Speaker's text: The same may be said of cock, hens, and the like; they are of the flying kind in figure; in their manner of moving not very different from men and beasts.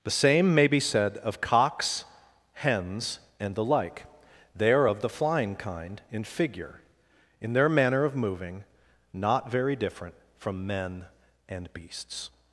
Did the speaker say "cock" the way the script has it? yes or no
no